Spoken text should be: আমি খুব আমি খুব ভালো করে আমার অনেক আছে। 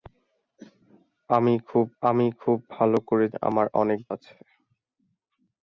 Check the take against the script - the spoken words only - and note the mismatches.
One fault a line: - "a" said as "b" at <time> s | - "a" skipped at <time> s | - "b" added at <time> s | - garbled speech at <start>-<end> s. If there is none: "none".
none